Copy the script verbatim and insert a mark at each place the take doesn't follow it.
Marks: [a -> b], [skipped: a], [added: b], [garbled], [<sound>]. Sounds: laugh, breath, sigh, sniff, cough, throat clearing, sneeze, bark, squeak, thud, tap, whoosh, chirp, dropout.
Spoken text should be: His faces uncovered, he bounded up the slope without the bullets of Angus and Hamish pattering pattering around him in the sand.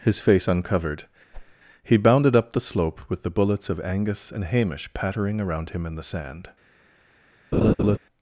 His [faces -> face] uncovered, [whoosh] he bounded up the slope [without -> with] the bullets of Angus and Hamish pattering [skipped: pattering] around him in the sand. [laugh]